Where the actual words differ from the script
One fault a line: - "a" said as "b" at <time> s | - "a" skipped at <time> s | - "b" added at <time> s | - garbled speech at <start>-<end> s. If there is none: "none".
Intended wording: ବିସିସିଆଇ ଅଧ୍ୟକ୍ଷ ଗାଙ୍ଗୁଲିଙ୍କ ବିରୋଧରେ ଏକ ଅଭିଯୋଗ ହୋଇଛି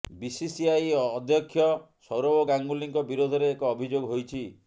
- "ସୌରଭ" added at 2.1 s